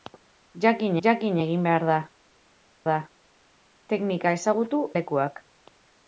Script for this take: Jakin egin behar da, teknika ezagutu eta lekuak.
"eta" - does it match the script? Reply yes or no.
no